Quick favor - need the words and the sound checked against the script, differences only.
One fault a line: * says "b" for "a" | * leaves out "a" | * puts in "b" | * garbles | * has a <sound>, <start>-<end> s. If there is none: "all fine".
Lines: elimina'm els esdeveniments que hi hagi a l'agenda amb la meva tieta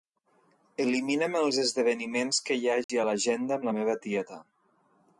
* has a dropout, 2.8-2.9 s